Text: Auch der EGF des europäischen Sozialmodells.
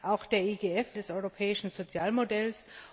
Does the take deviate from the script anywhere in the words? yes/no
no